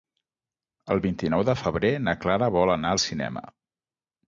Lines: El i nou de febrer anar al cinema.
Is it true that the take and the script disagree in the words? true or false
true